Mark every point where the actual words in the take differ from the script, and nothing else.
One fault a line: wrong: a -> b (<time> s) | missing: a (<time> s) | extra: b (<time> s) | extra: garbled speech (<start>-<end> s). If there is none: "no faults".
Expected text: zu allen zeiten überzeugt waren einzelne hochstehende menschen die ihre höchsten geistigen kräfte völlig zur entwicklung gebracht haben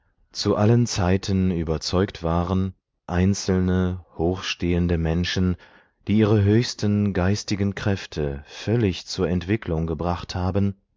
no faults